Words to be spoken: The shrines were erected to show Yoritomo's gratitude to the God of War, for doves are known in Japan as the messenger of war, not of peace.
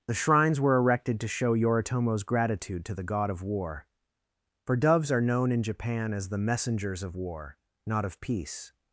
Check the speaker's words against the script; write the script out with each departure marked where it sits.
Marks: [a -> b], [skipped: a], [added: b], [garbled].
The shrines were erected to show Yoritomo's gratitude to the God of War, for doves are known in Japan as the [messenger -> messengers] of war, not of peace.